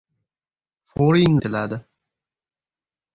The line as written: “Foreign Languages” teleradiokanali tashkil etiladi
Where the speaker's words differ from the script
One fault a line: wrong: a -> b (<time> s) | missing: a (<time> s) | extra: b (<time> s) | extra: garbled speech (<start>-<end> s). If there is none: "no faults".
missing: Languages teleradiokanali tashkil (1.4 s)